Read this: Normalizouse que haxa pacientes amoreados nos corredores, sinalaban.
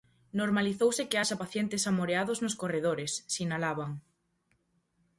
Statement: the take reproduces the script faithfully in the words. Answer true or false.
true